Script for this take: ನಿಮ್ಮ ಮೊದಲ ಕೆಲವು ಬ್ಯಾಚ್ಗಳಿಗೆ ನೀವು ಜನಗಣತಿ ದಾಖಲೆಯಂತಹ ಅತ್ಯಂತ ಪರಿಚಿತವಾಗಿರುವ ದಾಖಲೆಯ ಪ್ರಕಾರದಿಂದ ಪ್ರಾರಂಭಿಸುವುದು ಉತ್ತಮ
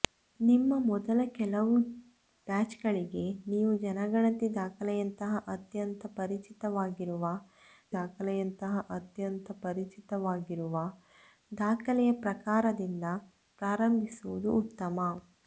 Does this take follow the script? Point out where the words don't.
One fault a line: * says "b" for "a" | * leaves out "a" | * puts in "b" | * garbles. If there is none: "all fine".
* puts in "ದಾಖಲೆಯಂತಹ ಅತ್ಯಂತ ಪರಿಚಿತವಾಗಿರುವ"